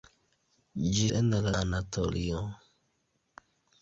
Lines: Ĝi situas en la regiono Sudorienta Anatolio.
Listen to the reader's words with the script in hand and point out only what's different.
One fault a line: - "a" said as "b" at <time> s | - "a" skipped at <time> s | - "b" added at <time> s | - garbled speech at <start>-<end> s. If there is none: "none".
- "situas" skipped at 1.1 s
- "regiono Sudorienta" skipped at 1.5 s